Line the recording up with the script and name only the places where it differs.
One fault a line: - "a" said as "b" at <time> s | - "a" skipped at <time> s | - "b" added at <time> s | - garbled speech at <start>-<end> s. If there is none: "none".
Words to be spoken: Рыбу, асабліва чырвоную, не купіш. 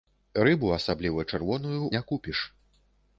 none